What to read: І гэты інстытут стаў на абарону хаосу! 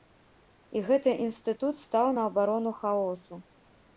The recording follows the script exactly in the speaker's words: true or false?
true